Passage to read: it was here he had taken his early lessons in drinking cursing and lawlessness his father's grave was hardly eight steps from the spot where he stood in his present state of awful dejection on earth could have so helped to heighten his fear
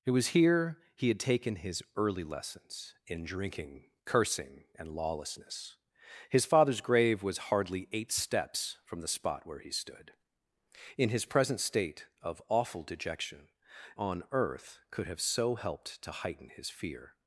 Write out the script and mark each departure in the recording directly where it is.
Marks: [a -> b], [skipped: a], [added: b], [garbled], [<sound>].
it was here he had taken his early lessons in drinking cursing and lawlessness his father's grave was hardly eight steps from the spot where he stood in his present state of awful dejection on earth could have so helped to heighten his fear